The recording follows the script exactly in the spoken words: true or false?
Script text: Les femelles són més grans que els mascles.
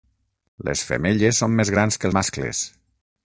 false